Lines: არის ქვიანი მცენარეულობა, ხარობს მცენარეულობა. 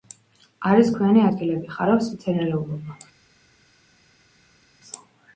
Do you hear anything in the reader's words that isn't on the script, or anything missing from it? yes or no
yes